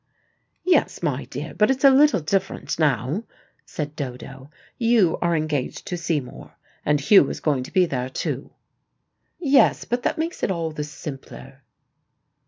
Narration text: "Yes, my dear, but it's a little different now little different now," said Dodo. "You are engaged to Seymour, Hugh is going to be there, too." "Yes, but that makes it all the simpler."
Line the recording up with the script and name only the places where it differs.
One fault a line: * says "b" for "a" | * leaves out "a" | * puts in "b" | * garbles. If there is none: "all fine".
* leaves out "little different now"
* puts in "and"